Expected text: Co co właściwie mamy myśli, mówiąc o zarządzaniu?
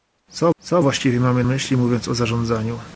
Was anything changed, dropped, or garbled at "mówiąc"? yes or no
no